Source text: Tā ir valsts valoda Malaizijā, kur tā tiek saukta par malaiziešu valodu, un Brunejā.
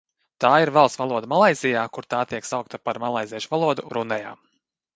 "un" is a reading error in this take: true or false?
true